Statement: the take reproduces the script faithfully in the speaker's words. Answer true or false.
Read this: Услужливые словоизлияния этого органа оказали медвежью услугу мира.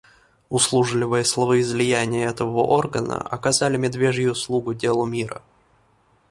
false